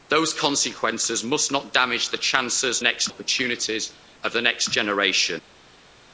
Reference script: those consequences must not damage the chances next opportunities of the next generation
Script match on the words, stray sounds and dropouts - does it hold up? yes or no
yes